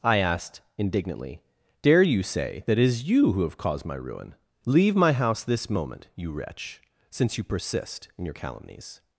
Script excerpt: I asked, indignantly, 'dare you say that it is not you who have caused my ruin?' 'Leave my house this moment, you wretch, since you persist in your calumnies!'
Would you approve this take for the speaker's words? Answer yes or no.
no